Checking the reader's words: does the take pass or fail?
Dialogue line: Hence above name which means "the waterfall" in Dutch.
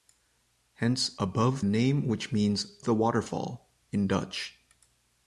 pass